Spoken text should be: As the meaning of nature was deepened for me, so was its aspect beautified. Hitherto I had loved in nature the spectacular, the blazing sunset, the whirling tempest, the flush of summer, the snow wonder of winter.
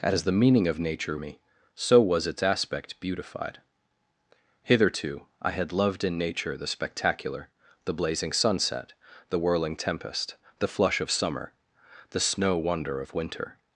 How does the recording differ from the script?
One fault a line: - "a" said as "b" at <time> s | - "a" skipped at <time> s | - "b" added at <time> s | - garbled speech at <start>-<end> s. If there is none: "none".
- "was deepened for" skipped at 1.2 s